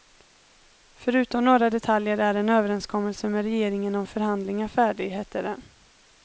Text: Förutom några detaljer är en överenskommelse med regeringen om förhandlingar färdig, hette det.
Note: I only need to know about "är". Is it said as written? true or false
true